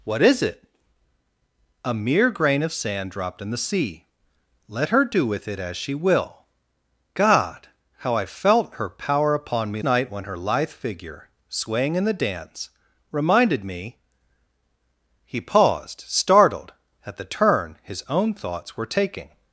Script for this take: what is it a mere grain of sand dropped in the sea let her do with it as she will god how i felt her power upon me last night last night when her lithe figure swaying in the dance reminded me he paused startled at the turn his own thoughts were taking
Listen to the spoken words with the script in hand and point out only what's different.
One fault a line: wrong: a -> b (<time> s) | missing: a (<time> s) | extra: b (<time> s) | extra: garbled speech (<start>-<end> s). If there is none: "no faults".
missing: last night last (9.8 s)